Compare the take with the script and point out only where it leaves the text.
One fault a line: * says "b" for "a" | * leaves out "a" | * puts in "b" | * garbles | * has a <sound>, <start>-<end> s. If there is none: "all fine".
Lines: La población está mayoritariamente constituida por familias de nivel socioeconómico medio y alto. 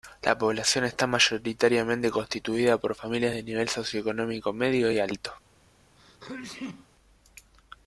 * has a sneeze, 6.0-6.9 s